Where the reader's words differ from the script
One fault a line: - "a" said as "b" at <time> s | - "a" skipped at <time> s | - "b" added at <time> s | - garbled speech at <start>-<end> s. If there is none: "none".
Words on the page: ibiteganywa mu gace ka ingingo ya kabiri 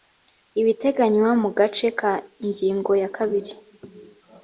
none